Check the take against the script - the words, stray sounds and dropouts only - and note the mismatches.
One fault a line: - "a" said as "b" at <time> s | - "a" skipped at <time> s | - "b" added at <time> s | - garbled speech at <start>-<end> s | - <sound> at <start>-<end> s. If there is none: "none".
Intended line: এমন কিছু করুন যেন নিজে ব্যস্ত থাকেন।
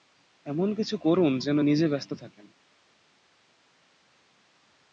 none